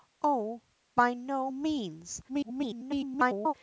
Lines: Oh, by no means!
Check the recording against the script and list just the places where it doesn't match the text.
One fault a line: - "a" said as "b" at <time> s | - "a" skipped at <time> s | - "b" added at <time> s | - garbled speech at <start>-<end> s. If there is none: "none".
- garbled speech at 2.3-3.5 s